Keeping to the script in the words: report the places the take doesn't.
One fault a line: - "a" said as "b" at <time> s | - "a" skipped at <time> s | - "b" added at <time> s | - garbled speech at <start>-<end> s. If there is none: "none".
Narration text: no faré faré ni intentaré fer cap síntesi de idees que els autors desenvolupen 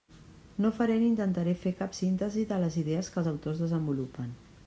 - "faré" skipped at 0.9 s
- "les" added at 2.6 s